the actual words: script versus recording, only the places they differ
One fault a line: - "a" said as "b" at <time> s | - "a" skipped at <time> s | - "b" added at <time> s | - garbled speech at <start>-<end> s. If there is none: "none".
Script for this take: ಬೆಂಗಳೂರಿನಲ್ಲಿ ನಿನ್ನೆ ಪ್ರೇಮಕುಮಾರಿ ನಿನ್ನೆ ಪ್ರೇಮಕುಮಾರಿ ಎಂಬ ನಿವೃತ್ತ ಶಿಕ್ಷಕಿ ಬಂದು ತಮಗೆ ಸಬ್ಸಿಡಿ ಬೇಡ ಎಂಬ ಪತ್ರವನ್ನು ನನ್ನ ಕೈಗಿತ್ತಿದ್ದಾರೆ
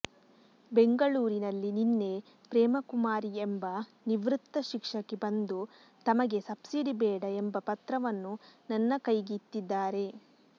- "ನಿನ್ನೆ ಪ್ರೇಮಕುಮಾರಿ" skipped at 3.3 s